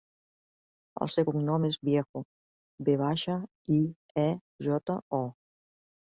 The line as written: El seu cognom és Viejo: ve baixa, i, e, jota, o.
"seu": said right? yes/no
yes